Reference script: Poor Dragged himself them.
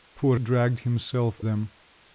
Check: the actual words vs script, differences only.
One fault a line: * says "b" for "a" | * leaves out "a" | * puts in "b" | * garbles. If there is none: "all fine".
all fine